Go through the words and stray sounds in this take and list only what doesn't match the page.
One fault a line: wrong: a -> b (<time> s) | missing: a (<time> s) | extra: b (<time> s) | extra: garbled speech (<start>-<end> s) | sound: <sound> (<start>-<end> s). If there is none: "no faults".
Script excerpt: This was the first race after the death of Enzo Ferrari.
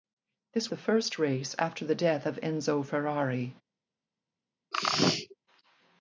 missing: was (0.7 s)
sound: sneeze (4.7-5.4 s)